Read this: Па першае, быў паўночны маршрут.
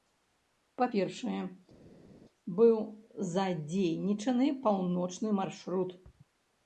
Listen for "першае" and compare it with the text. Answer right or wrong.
right